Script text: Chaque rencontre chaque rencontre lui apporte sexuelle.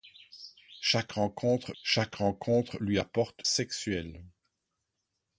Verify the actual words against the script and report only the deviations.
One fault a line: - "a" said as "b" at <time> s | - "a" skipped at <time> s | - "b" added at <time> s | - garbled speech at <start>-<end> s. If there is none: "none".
none